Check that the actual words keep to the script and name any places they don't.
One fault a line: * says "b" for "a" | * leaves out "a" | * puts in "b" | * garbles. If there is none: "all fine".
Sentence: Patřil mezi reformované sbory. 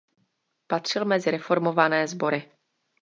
all fine